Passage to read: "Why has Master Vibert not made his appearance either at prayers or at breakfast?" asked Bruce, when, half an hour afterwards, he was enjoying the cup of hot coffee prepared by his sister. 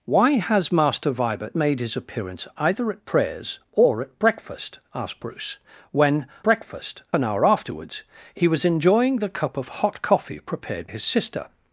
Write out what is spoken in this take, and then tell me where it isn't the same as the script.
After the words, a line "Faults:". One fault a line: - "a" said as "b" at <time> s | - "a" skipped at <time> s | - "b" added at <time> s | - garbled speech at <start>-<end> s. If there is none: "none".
"Why has Master Vibert made his appearance either at prayers or at breakfast?" asked Bruce, when, breakfast an hour afterwards, he was enjoying the cup of hot coffee prepared his sister.
Faults:
- "not" skipped at 1.6 s
- "half" said as "breakfast" at 6.4 s
- "by" skipped at 10.9 s